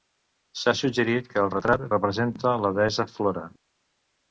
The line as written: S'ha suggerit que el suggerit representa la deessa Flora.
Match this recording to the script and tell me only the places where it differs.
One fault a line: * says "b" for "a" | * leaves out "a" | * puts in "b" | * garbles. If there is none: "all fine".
* says "retrat" for "suggerit"